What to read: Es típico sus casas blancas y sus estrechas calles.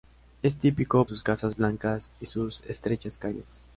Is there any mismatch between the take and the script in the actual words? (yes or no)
no